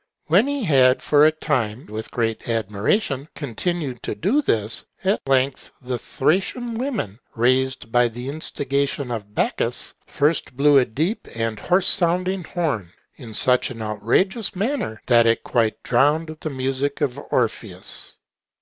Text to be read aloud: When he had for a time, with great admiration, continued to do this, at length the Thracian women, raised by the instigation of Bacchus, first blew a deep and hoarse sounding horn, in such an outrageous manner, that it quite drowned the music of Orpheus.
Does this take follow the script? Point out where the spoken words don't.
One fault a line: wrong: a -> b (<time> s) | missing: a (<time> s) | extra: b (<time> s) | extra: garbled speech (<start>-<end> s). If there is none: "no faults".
no faults